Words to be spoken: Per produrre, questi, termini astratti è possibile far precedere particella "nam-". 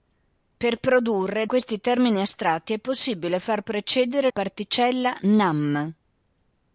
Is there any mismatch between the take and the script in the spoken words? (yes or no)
no